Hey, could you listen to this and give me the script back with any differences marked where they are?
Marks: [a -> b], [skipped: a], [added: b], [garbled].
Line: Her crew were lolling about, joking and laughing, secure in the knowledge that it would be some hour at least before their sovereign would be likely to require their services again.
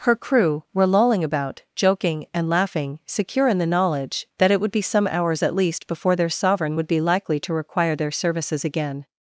Her crew were lolling about, joking and laughing, secure in the knowledge that it would be some [hour -> hours] at least before their sovereign would be likely to require their services again.